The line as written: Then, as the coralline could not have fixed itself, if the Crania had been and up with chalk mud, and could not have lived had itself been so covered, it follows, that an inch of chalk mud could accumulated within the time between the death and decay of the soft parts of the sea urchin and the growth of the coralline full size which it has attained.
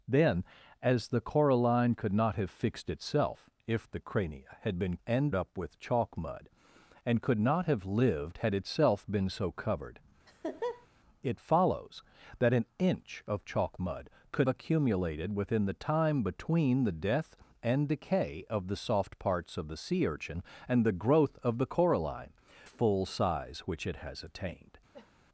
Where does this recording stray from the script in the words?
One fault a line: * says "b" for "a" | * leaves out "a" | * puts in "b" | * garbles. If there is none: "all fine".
all fine